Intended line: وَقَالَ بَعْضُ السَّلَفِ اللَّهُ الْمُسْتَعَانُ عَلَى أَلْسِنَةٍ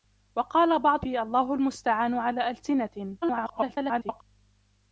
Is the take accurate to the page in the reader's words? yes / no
no